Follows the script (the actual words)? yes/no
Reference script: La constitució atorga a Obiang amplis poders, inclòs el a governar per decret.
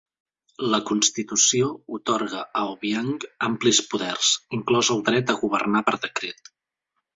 no